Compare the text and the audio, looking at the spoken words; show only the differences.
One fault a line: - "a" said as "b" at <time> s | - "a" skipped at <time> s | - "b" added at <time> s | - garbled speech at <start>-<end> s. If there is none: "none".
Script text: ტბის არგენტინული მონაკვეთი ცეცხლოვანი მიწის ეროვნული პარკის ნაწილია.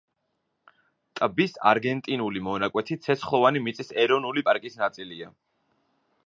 none